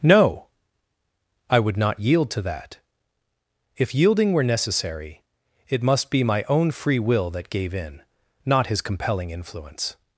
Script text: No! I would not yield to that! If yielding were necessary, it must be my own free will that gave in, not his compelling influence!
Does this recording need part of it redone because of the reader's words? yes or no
no